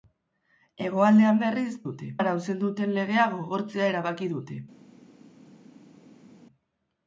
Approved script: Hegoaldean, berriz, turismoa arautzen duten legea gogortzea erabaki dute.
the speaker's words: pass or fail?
fail